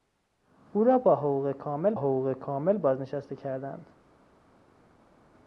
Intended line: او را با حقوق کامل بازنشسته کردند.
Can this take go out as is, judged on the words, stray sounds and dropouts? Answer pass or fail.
fail